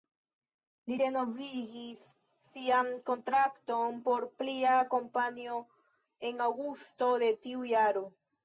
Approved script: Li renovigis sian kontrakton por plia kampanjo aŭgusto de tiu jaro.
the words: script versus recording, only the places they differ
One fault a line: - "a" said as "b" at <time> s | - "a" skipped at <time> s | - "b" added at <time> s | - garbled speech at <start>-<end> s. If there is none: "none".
- "en" added at 6.3 s